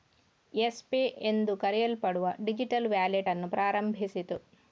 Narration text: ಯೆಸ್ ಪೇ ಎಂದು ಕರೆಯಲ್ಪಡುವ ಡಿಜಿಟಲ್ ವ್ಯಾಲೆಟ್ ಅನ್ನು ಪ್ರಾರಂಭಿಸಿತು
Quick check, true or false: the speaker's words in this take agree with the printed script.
true